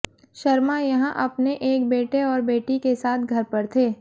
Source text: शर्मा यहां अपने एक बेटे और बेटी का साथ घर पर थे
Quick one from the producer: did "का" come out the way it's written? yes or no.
no